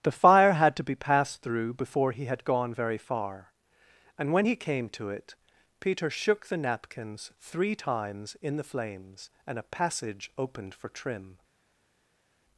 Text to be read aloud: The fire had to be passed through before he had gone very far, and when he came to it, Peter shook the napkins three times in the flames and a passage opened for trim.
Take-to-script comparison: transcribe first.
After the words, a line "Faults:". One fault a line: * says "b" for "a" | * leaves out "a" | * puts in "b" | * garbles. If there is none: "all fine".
The fire had to be passed through before he had gone very far, and when he came to it, Peter shook the napkins three times in the flames and a passage opened for trim.
Faults:
all fine